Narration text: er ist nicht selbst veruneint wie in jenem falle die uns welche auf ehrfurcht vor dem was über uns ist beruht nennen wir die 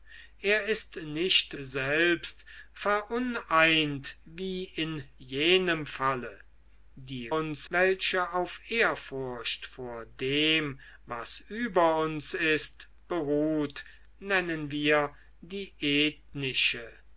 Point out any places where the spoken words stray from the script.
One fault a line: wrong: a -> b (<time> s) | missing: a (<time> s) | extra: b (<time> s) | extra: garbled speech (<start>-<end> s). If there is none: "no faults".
no faults